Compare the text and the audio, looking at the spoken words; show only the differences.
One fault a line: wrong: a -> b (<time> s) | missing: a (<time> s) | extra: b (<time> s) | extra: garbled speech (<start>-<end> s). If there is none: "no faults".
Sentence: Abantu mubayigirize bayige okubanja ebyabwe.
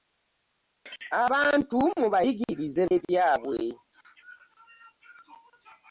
missing: bayige okubanja (2.8 s)